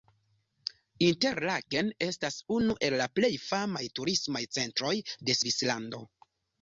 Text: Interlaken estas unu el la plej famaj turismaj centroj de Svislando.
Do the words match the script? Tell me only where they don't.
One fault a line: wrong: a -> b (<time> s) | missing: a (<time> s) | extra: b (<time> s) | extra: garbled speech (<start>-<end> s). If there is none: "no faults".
no faults